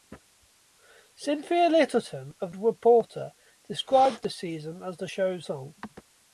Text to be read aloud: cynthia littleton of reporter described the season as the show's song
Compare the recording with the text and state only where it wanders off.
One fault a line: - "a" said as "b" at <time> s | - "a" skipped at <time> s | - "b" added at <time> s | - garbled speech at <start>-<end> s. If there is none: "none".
none